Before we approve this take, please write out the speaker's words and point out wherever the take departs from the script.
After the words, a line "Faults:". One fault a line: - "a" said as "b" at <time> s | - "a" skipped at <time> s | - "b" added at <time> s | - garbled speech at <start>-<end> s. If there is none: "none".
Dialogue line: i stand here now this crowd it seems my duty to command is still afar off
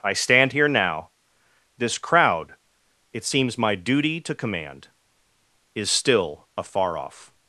i stand here now this crowd it seems my duty to command is still afar off
Faults:
none